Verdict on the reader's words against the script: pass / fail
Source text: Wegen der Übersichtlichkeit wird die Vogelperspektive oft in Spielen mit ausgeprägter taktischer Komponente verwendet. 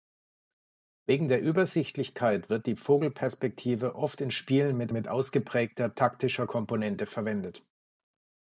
fail